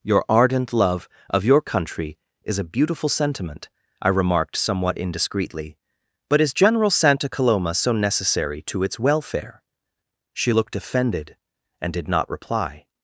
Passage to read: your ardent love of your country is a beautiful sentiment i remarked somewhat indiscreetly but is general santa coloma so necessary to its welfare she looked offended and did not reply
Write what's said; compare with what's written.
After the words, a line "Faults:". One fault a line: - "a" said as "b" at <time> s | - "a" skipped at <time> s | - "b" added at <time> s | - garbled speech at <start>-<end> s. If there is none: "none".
your ardent love of your country is a beautiful sentiment i remarked somewhat indiscreetly but is general santa coloma so necessary to its welfare she looked offended and did not reply
Faults:
none